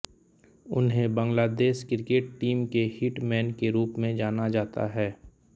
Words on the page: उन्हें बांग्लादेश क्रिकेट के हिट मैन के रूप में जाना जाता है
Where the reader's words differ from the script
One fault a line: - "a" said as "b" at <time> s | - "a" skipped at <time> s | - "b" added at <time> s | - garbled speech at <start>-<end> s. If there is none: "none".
- "टीम" added at 2.4 s